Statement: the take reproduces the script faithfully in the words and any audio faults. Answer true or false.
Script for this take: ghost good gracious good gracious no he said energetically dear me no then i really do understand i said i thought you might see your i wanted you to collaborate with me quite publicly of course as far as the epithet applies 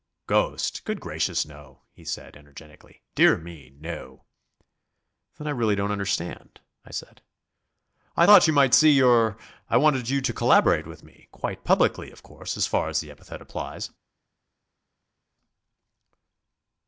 false